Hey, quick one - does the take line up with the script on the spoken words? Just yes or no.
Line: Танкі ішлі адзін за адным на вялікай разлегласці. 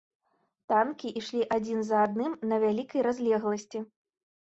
yes